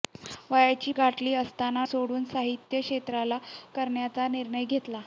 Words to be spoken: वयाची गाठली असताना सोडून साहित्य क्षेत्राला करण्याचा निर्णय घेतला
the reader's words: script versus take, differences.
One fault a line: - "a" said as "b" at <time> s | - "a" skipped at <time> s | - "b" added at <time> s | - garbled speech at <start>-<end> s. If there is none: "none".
none